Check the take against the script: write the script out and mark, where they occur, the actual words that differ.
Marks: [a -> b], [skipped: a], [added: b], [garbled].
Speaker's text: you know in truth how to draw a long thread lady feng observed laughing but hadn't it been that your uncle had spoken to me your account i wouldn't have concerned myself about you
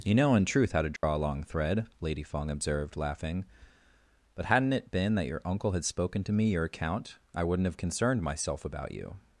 you know in truth how to draw a long thread lady feng observed laughing but hadn't it been that your uncle had spoken to me your account i wouldn't have concerned myself about you